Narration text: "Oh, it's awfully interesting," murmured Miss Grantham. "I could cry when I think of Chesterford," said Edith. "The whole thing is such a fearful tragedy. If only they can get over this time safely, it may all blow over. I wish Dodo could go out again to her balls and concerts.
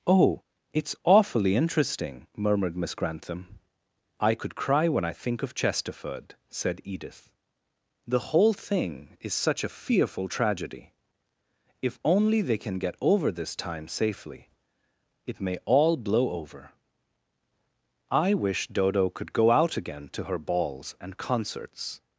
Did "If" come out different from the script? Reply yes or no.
no